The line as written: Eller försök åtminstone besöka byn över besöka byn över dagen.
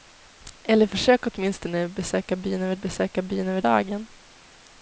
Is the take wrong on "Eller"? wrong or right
right